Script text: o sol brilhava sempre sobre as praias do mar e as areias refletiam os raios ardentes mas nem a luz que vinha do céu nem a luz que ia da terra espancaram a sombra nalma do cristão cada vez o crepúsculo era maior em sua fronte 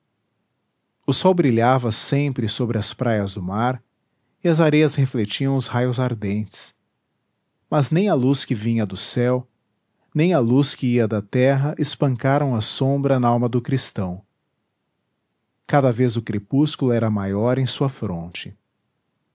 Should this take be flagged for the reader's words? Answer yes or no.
no